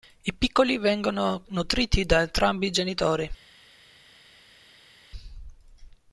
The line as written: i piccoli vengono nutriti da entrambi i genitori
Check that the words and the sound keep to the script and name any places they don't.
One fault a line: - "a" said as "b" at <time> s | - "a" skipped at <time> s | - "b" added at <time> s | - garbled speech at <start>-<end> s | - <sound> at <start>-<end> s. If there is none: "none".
none